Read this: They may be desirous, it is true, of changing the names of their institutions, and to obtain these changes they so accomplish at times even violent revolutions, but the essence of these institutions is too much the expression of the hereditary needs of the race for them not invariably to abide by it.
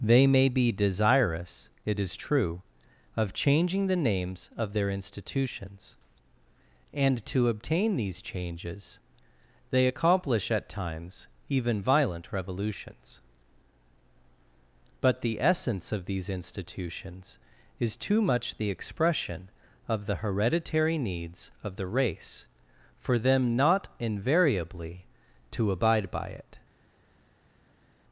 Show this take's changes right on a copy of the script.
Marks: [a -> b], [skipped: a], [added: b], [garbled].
They may be desirous, it is true, of changing the names of their institutions, and to obtain these changes they [skipped: so] accomplish at times even violent revolutions, but the essence of these institutions is too much the expression of the hereditary needs of the race for them not invariably to abide by it.